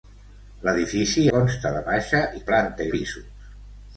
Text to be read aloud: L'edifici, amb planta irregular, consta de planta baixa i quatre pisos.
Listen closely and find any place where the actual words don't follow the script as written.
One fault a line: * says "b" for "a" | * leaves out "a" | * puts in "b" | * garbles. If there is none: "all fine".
* leaves out "amb planta irregular"
* leaves out "planta"
* says "planta" for "quatre"